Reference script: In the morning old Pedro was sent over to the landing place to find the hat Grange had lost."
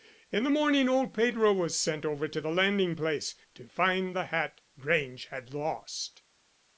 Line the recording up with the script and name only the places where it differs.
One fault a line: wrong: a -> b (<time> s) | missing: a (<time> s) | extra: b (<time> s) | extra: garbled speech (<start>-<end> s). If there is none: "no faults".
no faults